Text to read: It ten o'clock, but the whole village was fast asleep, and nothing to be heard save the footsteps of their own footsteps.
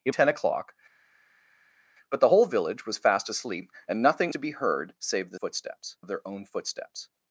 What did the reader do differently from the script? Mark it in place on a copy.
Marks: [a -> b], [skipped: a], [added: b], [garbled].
It ten o'clock, but the whole village was fast asleep, and nothing to be heard save the footsteps of their own footsteps.